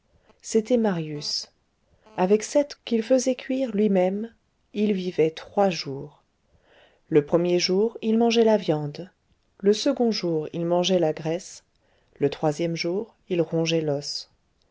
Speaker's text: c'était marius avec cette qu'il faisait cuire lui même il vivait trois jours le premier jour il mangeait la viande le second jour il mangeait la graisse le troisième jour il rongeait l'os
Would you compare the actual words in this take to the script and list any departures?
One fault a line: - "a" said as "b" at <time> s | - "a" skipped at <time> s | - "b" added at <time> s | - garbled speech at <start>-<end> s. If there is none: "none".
none